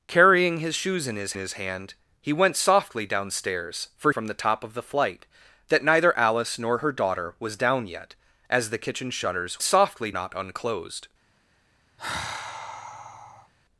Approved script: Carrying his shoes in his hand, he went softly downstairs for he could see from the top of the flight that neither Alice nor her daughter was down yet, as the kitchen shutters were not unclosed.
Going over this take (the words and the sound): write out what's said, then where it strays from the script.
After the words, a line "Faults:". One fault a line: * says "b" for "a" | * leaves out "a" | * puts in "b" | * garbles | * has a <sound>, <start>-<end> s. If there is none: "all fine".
Carrying his shoes in his his hand, he went softly downstairs for from the top of the flight that neither Alice nor her daughter was down yet, as the kitchen shutters softly not unclosed.
Faults:
* puts in "his"
* leaves out "he could see"
* says "softly" for "were"
* has a sigh, 12.0-13.5 s